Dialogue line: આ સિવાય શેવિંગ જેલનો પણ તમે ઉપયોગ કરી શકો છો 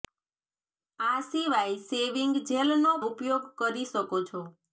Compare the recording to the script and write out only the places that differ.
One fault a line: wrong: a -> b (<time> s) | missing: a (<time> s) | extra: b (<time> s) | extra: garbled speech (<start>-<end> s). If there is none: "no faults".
missing: પણ તમે (2.9 s)